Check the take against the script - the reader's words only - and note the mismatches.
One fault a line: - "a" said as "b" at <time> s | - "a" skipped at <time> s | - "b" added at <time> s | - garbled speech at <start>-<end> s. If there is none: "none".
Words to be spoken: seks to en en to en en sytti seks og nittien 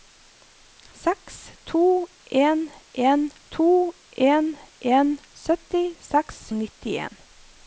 none